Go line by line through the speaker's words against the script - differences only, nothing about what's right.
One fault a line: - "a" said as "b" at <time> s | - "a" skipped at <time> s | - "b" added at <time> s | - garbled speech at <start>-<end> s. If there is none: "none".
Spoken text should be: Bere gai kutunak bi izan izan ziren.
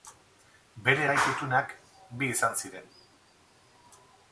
- "izan" skipped at 2.6 s